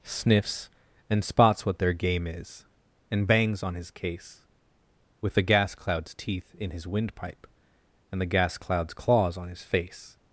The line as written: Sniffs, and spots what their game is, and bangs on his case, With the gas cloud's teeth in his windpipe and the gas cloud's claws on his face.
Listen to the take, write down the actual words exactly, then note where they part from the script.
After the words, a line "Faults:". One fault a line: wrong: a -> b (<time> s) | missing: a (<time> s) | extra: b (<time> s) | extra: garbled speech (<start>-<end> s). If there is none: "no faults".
Sniffs, and spots what their game is, and bangs on his case, With the gas cloud's teeth in his windpipe and the gas cloud's claws on his face.
Faults:
no faults